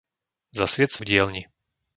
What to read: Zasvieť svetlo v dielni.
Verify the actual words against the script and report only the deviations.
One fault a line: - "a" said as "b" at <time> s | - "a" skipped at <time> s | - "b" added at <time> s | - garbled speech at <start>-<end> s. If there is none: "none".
- "svetlo" skipped at 1.0 s